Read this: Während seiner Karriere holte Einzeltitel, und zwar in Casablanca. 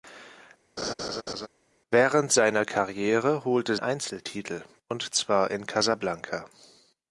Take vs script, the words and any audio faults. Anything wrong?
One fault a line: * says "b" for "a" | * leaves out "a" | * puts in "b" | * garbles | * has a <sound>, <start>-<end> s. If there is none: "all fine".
* has a laugh, 0.8-1.5 s